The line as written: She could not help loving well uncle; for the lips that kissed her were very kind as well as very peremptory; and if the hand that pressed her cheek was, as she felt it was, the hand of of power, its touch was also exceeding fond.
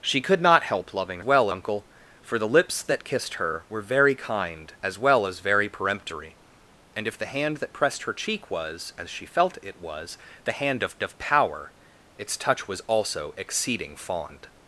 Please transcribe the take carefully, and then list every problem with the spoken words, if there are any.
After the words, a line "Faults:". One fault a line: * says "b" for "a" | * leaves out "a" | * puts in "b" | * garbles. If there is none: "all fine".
She could not help loving well uncle; for the lips that kissed her were very kind as well as very peremptory; and if the hand that pressed her cheek was, as she felt it was, the hand of of power, its touch was also exceeding fond.
Faults:
all fine